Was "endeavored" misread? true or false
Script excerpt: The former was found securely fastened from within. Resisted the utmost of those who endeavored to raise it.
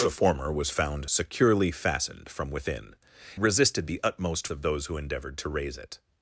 false